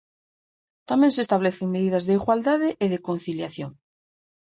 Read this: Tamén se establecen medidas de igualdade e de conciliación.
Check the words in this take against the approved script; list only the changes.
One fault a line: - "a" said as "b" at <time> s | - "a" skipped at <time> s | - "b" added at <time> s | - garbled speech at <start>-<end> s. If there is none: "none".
none